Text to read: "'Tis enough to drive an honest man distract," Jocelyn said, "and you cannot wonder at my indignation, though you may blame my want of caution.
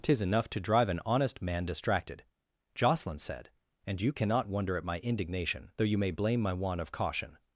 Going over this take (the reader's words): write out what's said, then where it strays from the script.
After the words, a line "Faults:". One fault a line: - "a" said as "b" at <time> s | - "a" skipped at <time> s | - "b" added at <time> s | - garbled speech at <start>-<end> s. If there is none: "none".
"'Tis enough to drive an honest man distracted," Jocelyn said, "and you cannot wonder at my indignation, though you may blame my want of caution.
Faults:
- "distract" said as "distracted" at 1.6 s